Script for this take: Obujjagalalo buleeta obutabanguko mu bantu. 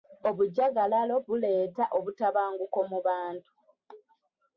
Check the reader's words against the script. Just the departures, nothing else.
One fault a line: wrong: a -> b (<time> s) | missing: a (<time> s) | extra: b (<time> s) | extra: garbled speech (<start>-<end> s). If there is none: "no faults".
no faults